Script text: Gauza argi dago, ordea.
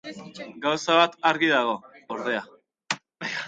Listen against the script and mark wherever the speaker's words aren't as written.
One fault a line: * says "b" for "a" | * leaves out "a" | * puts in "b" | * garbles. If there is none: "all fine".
* puts in "bat"